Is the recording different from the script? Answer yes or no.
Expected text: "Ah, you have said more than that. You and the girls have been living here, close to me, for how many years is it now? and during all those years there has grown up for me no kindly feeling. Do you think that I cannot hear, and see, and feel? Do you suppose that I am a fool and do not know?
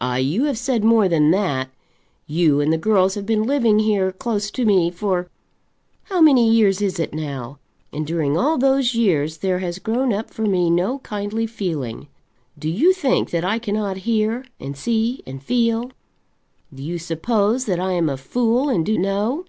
yes